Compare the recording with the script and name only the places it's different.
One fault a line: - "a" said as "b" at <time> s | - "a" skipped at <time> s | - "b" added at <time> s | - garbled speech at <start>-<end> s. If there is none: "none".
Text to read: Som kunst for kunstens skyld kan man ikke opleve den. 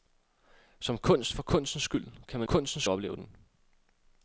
- "ikke" said as "kunstens" at 2.4 s